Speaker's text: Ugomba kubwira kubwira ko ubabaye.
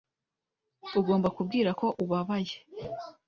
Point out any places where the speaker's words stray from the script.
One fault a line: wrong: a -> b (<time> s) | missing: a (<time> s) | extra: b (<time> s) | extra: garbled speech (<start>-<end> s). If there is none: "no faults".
missing: kubwira (1.7 s)